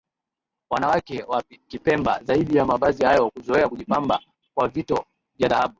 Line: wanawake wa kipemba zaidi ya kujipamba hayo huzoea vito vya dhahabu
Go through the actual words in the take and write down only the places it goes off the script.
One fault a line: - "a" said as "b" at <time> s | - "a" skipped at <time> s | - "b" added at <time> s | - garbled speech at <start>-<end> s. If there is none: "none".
- "kujipamba" said as "mavazi" at 2.6 s
- "kujipamba kwa" added at 3.7 s